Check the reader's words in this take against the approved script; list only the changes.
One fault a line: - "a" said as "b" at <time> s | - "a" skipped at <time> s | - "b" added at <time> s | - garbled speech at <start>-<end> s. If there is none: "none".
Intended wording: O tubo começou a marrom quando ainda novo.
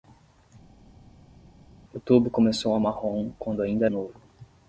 none